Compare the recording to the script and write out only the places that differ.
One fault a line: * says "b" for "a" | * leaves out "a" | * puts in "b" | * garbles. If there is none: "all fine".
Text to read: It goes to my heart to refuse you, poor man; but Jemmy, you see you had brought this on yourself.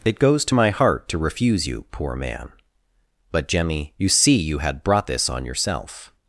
all fine